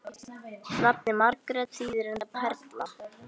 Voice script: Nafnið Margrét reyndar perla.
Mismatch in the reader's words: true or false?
true